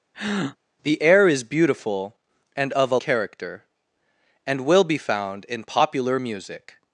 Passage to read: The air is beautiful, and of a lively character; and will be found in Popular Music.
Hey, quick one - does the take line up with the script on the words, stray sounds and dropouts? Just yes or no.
no